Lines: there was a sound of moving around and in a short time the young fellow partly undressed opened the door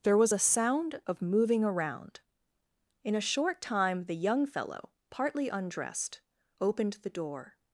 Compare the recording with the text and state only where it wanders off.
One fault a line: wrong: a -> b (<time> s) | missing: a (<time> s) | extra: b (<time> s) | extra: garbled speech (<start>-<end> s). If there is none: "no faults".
missing: and (2.2 s)